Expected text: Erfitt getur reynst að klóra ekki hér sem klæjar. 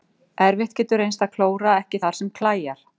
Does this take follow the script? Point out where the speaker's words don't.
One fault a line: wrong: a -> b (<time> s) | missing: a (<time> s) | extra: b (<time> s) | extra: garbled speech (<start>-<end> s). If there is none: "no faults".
wrong: hér -> þar (2.0 s)